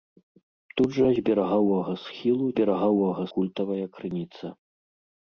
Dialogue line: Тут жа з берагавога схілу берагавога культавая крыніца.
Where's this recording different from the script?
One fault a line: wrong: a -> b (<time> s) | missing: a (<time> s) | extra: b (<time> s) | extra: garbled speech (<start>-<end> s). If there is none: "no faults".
no faults